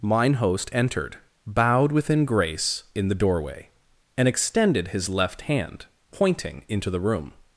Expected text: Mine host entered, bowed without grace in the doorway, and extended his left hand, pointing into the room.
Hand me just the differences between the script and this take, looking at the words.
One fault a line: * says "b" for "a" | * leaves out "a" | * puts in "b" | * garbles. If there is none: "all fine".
* says "within" for "without"